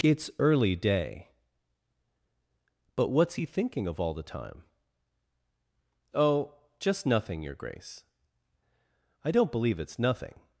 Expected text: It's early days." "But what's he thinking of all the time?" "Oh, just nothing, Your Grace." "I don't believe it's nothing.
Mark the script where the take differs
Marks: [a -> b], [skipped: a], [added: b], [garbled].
It's early [days." -> day] "But what's he thinking of all the time?" "Oh, just nothing, Your Grace." "I don't believe it's nothing.